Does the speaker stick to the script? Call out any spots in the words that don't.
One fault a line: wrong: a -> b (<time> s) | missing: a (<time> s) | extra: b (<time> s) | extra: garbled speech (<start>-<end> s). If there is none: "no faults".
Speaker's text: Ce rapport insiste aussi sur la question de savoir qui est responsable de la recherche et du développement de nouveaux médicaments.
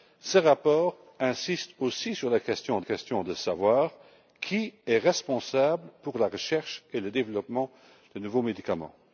extra: question (2.8 s)